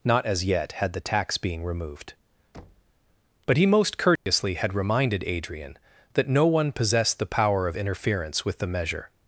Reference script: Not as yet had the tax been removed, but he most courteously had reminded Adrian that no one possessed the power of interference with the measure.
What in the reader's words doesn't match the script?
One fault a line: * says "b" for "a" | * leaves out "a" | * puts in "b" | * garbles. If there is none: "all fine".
* says "being" for "been"